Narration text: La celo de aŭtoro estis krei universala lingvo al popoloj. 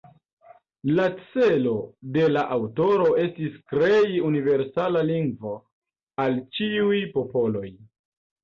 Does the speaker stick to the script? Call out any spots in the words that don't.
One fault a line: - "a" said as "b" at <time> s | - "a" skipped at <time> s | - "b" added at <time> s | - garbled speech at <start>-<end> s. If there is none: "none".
- "la" added at 2.3 s
- "ĉiuj" added at 6.6 s